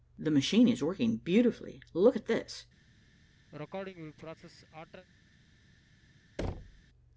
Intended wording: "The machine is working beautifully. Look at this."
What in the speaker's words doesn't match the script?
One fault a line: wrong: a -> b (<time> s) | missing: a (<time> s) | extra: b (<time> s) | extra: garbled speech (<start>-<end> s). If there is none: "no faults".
no faults